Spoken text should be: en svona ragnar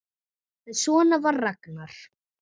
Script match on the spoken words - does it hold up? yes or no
no